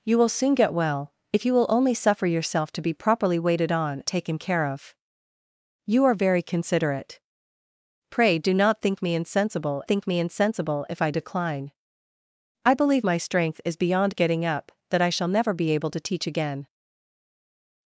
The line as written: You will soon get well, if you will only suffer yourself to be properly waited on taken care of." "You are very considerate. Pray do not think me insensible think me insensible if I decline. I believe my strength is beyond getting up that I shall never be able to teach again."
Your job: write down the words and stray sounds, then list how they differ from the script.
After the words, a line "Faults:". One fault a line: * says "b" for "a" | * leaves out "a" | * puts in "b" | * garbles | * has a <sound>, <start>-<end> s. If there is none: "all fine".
You will soon get well, if you will only suffer yourself to be properly waited on taken care of." "You are very considerate. Pray do not think me insensible think me insensible if I decline. I believe my strength is beyond getting up that I shall never be able to teach again."
Faults:
all fine